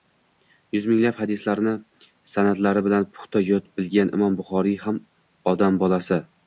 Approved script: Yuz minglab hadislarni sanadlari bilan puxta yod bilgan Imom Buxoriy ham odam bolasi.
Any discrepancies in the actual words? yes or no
no